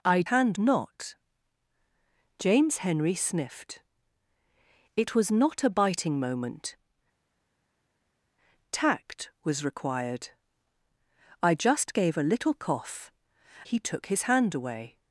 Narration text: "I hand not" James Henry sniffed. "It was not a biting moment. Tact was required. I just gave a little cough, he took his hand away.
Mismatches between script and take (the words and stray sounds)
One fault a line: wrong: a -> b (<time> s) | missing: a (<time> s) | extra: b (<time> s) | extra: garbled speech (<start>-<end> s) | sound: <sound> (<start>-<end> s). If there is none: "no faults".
no faults